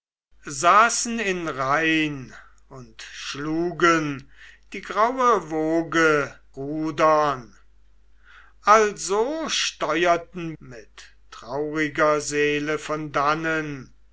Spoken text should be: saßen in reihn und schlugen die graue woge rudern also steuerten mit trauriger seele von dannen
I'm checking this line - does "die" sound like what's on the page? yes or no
yes